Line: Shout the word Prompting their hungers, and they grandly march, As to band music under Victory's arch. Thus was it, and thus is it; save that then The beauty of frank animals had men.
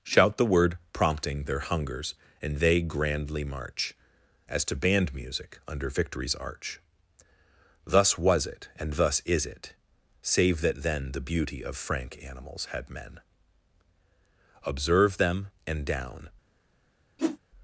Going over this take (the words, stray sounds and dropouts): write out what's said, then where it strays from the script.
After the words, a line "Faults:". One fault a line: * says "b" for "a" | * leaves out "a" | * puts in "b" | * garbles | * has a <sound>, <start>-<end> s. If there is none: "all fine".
Shout the word Prompting their hungers, and they grandly march, As to band music under Victory's arch. Thus was it, and thus is it; save that then The beauty of frank animals had men. Observe them, and down
Faults:
* puts in "Observe them and down"
* has a whoosh, 17.2-17.4 s